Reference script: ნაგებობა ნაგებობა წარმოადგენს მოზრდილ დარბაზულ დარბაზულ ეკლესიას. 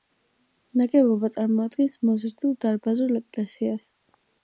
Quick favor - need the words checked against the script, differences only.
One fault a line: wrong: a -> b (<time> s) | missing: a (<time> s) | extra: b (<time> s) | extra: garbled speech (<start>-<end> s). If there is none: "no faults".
missing: ნაგებობა (1.3 s)
missing: დარბაზულ (3.2 s)